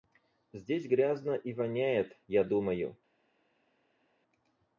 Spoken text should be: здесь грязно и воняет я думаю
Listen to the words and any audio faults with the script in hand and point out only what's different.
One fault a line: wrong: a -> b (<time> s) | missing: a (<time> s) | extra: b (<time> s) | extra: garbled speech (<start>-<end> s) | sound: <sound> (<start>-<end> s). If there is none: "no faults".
no faults